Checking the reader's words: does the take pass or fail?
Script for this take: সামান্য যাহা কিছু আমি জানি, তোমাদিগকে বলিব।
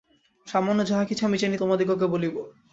pass